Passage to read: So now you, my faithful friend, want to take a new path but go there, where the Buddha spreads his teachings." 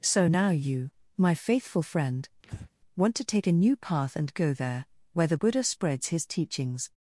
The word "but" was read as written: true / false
false